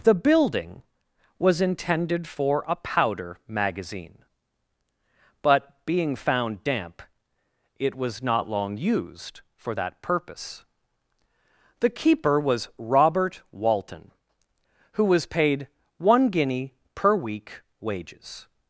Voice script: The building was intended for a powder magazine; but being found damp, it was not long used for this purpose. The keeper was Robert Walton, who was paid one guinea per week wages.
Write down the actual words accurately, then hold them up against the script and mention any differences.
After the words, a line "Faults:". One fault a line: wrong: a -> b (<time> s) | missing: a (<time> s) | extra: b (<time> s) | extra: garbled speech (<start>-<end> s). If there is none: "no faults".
The building was intended for a powder magazine; but being found damp, it was not long used for that purpose. The keeper was Robert Walton, who was paid one guinea per week wages.
Faults:
wrong: this -> that (9.7 s)